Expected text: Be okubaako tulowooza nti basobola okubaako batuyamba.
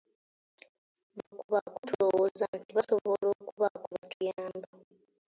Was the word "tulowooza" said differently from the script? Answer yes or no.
no